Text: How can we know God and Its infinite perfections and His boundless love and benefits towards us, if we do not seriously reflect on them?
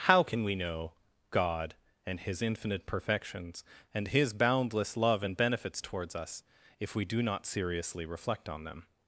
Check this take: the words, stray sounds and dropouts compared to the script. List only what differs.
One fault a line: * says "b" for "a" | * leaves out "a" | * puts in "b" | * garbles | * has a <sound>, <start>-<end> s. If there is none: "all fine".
* says "His" for "Its"